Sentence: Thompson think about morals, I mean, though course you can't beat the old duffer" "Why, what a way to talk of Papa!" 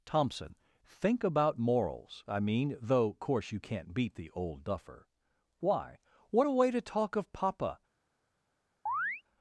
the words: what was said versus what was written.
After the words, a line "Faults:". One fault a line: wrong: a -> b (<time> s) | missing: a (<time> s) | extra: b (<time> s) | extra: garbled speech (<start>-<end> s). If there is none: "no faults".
Thompson think about morals, I mean, though course you can't beat the old duffer" "Why, what a way to talk of Papa!"
Faults:
no faults